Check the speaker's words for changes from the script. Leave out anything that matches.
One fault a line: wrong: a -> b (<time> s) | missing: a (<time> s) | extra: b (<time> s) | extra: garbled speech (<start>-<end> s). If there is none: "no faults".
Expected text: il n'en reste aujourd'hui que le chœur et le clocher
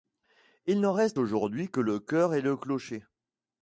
no faults